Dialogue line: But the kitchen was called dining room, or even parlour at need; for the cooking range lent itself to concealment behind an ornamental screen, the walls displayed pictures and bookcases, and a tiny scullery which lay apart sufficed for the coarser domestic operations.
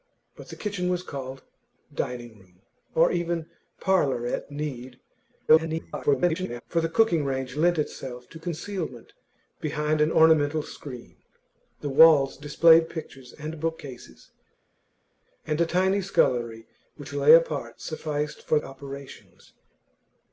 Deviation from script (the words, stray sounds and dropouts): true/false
true